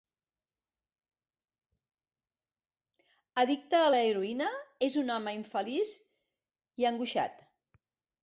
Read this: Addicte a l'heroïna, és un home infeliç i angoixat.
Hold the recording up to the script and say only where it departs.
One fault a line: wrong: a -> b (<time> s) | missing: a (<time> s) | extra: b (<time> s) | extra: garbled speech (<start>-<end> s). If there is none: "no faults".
no faults